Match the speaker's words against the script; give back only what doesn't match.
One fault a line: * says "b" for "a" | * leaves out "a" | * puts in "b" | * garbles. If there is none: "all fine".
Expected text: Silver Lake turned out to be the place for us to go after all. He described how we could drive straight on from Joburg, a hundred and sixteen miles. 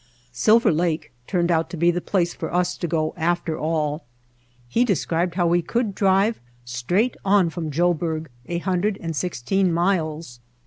all fine